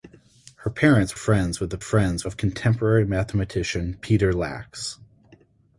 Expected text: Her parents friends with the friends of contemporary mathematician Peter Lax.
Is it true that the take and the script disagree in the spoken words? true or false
false